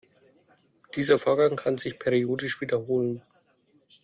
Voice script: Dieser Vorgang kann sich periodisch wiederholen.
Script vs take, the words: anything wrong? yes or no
no